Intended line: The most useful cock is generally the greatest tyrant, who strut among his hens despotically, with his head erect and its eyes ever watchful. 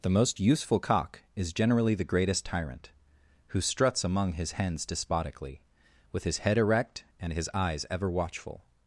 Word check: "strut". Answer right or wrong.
wrong